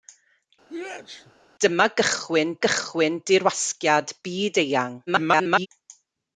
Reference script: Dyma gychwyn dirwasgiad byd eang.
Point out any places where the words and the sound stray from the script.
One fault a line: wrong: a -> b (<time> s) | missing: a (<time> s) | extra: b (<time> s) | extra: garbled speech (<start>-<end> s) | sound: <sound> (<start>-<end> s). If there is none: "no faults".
sound: sneeze (0.7-1.3 s)
extra: gychwyn (2.7 s)
extra: garbled speech (5.1-5.7 s)